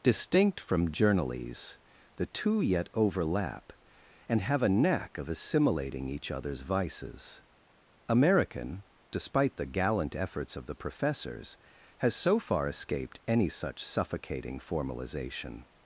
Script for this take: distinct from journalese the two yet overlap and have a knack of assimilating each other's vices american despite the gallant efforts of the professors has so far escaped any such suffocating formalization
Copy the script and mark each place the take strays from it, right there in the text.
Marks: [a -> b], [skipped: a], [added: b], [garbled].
distinct from journalese the two yet overlap and have a knack of assimilating each other's vices american despite the gallant efforts of the professors has so far escaped any such suffocating formalization